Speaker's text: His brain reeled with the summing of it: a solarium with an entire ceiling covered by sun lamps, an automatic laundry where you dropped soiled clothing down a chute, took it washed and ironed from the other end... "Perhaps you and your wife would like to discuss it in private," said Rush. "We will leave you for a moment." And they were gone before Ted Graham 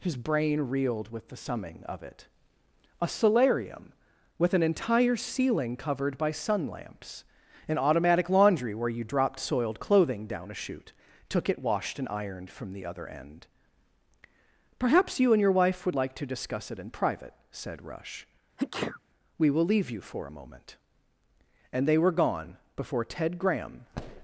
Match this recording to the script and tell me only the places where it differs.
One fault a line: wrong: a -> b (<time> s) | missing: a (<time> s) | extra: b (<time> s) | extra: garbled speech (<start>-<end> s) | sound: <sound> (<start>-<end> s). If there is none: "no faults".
sound: sneeze (18.6-19.0 s)